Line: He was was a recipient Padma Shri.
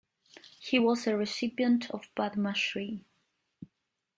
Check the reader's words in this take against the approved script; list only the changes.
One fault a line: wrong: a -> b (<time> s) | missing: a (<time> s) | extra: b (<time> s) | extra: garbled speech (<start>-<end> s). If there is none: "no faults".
missing: was (1.1 s)
extra: of (1.9 s)